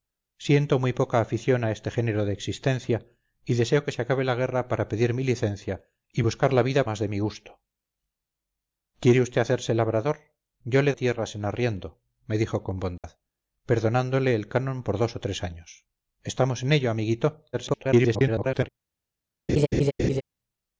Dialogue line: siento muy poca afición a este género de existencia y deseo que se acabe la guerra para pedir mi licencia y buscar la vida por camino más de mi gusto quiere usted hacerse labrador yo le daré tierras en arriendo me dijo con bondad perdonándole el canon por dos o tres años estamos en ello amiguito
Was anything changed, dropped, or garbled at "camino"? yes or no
yes